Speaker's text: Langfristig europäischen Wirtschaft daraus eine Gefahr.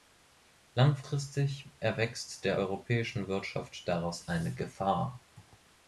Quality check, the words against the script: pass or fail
fail